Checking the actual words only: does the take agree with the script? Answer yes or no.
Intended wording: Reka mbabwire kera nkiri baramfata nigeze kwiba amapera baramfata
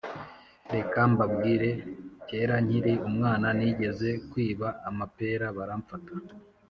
no